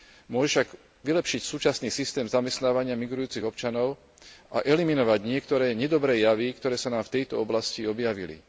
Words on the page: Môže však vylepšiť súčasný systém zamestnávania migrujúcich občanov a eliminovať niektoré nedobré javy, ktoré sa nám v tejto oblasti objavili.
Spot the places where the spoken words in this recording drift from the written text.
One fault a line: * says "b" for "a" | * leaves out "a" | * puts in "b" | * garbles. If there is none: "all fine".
all fine